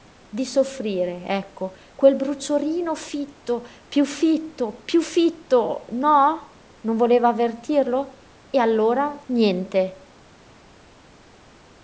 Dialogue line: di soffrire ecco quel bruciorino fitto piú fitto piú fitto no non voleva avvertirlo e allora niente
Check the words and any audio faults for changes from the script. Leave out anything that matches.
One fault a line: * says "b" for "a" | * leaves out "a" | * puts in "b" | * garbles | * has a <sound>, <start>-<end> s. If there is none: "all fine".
all fine